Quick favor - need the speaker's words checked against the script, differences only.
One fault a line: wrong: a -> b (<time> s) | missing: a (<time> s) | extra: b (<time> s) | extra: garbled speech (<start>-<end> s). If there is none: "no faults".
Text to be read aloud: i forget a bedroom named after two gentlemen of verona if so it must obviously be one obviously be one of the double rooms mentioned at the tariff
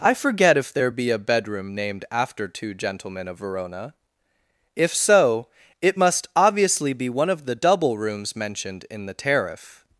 extra: if there be (0.6 s)
missing: obviously be one (7.3 s)
wrong: at -> in (8.9 s)